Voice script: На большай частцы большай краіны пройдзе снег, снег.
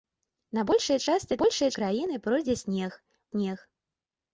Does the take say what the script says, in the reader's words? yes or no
yes